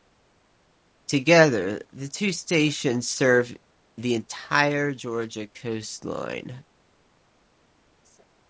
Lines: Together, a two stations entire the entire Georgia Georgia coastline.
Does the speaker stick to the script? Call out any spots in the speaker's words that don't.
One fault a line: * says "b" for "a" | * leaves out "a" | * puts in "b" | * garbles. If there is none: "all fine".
* says "the" for "a"
* says "serve" for "entire"
* leaves out "Georgia"